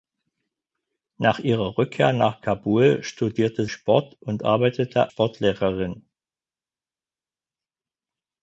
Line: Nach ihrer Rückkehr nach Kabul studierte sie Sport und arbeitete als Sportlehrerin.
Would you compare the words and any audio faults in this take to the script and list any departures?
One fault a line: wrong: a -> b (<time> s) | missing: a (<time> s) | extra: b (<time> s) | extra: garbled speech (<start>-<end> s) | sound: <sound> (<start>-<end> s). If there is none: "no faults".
missing: sie (3.6 s)
missing: als (5.1 s)